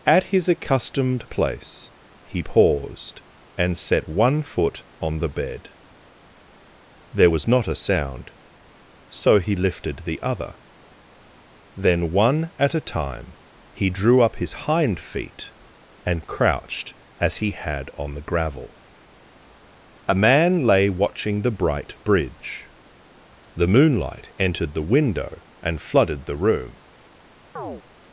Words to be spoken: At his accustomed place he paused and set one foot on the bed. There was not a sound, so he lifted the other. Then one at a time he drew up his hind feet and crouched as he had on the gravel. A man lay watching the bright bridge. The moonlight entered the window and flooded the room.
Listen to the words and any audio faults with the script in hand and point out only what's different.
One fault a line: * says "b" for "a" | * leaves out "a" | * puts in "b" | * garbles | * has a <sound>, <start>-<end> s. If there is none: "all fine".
* has a chirp, 27.6-27.8 s